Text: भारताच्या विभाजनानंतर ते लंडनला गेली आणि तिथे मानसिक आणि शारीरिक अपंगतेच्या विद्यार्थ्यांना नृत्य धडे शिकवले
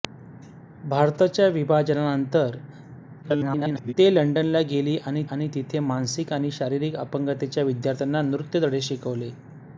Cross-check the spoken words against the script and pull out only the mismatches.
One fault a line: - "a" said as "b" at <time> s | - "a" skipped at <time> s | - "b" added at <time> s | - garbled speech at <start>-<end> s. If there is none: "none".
- garbled speech at 3.2-3.9 s
- "आणि" added at 5.3 s